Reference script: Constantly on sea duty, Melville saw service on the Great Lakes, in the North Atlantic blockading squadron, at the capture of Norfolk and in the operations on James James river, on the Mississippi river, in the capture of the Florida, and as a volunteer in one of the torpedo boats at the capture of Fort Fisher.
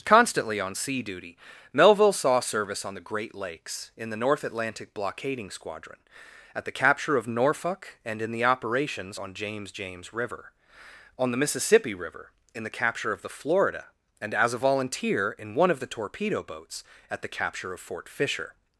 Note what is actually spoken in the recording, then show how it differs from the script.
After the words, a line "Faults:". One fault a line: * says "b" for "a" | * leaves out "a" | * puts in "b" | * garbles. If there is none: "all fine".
Constantly on sea duty, Melville saw service on the Great Lakes, in the North Atlantic blockading squadron, at the capture of Norfolk and in the operations on James James river, on the Mississippi river, in the capture of the Florida, and as a volunteer in one of the torpedo boats at the capture of Fort Fisher.
Faults:
all fine